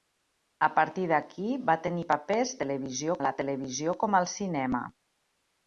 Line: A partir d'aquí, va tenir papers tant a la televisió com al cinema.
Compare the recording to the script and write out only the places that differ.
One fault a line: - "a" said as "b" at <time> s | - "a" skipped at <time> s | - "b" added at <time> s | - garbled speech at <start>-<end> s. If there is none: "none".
- "tant" said as "televisió" at 2.6 s